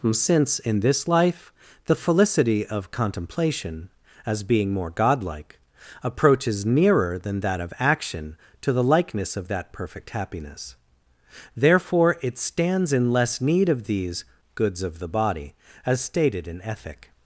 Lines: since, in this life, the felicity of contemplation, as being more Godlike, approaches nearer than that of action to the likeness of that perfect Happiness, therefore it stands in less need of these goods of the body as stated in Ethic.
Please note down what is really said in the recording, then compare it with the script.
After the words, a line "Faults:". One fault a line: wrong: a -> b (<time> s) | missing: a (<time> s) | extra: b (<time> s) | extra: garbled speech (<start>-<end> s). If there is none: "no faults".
since, in this life, the felicity of contemplation, as being more Godlike, approaches nearer than that of action to the likeness of that perfect Happiness, therefore it stands in less need of these goods of the body as stated in Ethic.
Faults:
no faults